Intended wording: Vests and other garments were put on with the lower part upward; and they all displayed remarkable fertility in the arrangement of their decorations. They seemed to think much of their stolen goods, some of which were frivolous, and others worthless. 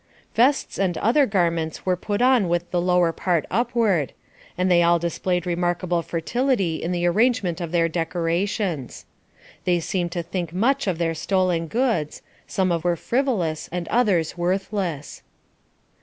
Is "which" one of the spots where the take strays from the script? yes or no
yes